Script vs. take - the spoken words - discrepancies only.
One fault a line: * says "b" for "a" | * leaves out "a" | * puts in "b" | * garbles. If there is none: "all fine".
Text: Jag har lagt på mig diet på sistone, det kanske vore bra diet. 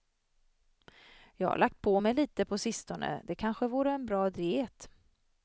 * says "lite" for "diet"
* puts in "en"